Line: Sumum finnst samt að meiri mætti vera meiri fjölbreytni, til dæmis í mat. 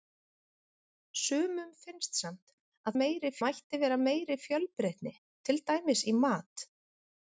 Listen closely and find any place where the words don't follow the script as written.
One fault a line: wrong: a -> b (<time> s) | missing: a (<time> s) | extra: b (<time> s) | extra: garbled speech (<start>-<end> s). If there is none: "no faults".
no faults